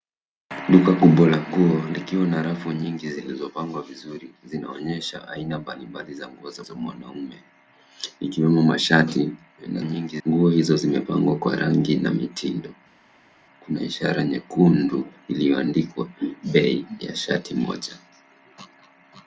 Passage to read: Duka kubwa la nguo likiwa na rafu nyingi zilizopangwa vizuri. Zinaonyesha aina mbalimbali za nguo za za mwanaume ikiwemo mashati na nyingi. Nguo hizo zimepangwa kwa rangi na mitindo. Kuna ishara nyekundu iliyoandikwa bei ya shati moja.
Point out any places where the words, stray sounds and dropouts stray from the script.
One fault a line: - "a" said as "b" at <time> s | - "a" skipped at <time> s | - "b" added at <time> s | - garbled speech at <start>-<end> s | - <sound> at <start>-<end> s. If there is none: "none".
none